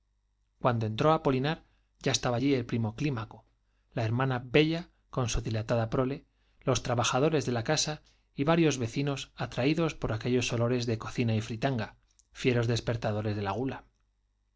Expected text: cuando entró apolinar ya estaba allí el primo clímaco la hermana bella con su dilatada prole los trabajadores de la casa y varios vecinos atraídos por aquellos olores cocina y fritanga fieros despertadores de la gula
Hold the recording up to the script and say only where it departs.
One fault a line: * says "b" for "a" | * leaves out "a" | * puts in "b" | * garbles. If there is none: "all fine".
* puts in "de"